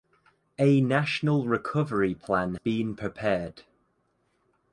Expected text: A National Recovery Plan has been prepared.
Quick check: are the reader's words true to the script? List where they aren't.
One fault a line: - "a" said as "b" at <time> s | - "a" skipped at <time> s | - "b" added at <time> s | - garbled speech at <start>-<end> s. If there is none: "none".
- "has" skipped at 2.5 s